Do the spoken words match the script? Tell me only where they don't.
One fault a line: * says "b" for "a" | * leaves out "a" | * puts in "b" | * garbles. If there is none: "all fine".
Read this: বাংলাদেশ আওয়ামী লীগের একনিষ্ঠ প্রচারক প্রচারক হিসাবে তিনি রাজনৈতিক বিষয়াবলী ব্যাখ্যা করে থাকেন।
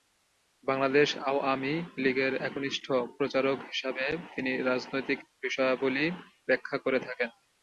* leaves out "প্রচারক"